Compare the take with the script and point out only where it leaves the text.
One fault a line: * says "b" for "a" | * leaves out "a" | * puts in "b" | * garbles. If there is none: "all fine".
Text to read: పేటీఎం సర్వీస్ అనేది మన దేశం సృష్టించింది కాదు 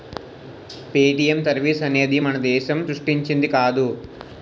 all fine